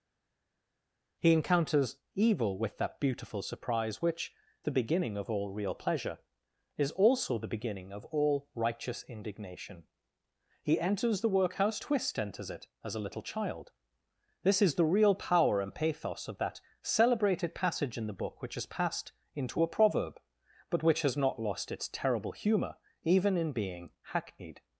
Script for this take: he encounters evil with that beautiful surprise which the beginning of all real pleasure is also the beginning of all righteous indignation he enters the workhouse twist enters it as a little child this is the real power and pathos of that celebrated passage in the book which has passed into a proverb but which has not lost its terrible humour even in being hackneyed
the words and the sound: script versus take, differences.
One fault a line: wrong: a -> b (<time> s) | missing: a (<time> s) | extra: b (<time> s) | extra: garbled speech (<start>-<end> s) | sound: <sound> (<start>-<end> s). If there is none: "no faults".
no faults